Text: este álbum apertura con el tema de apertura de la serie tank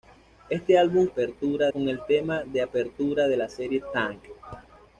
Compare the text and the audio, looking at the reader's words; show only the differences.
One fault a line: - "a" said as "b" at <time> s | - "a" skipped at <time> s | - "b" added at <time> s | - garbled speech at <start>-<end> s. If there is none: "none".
none